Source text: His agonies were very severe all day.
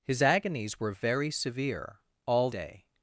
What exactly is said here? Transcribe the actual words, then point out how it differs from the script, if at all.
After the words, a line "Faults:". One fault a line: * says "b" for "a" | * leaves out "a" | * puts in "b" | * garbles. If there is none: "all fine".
His agonies were very severe all day.
Faults:
all fine